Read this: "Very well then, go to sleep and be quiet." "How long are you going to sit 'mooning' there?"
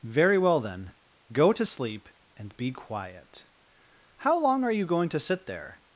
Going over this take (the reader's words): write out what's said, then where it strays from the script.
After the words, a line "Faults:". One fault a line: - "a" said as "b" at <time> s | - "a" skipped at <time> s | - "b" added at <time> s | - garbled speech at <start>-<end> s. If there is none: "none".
"Very well then, go to sleep and be quiet." "How long are you going to sit' 'there?"
Faults:
- "mooning" skipped at 5.5 s